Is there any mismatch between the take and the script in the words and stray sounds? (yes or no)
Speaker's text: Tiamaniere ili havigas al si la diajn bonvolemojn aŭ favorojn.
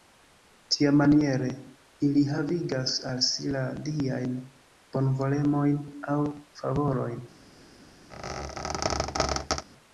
yes